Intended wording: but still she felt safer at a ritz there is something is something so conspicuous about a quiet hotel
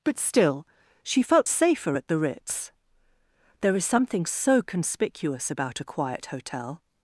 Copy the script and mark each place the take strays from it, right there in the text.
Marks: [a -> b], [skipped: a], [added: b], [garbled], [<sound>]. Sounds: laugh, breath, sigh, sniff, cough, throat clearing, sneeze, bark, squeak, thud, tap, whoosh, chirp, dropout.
but still she felt safer at [a -> the] ritz there is something [skipped: is something] so conspicuous about a quiet hotel